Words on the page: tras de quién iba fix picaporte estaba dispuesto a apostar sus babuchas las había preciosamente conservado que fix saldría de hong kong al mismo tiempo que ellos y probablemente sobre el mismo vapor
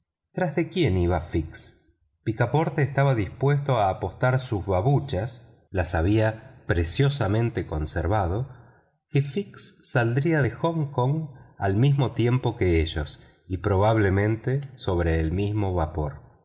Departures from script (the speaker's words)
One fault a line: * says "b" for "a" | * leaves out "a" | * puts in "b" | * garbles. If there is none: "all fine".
all fine